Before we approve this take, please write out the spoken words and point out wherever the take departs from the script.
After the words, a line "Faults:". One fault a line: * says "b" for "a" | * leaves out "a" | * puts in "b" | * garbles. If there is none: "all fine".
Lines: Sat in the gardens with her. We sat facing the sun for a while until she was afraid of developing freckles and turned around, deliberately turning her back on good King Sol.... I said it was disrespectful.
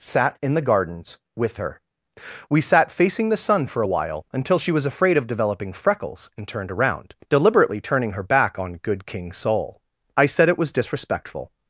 Sat in the gardens with her. We sat facing the sun for a while until she was afraid of developing freckles and turned around, deliberately turning her back on good King Sol.... I said it was disrespectful.
Faults:
all fine